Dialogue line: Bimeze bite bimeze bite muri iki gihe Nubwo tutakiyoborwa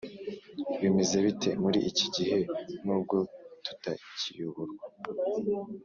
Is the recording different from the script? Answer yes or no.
yes